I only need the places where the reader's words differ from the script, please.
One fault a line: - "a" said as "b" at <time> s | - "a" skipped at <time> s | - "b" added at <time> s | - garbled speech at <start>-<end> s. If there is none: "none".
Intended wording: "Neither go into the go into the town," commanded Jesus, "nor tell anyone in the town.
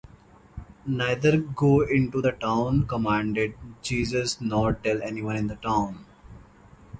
- "go into the" skipped at 2.3 s